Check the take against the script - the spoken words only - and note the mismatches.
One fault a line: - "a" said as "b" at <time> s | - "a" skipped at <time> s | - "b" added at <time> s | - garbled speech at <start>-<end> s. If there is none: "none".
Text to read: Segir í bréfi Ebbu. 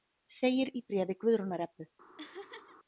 - "Guðrúnar" added at 1.3 s